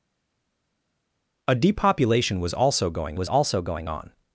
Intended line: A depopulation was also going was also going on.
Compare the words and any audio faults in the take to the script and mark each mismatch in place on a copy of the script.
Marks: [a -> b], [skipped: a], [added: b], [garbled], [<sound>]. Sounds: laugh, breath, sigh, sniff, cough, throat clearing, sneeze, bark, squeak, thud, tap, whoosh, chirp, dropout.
A depopulation was also going was also going on.